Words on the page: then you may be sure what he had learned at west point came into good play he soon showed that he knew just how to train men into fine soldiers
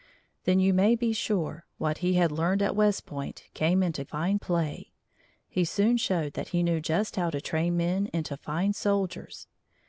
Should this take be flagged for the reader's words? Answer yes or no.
yes